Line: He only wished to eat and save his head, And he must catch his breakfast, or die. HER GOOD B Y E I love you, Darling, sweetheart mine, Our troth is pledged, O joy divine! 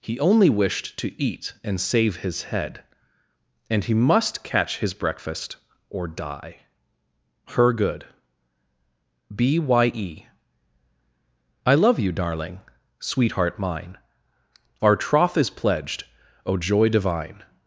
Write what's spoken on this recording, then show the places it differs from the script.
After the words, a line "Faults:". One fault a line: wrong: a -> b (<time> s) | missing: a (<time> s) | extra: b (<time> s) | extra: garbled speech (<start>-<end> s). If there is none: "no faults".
He only wished to eat and save his head, And he must catch his breakfast, or die. HER GOOD B Y E I love you, Darling, sweetheart mine, Our troth is pledged, O joy divine!
Faults:
no faults